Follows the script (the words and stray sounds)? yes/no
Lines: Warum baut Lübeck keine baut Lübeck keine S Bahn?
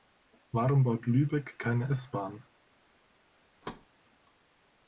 no